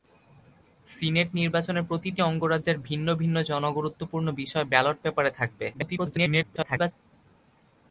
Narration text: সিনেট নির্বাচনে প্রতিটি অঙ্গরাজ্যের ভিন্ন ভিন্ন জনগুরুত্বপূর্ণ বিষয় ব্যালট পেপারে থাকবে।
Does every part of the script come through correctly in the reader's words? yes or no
no